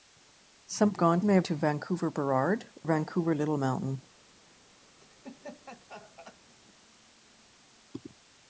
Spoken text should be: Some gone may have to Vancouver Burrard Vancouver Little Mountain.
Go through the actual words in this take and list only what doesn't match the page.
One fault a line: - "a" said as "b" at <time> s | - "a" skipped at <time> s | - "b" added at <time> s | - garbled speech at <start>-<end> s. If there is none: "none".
none